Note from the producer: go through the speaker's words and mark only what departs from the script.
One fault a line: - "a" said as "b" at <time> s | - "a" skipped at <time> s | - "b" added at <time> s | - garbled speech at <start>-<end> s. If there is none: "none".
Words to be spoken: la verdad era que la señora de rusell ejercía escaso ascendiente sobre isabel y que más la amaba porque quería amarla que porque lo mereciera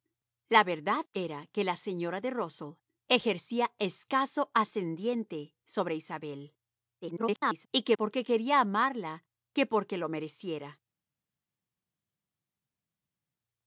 - garbled speech at 7.0-7.7 s
- "más la amaba" skipped at 8.0 s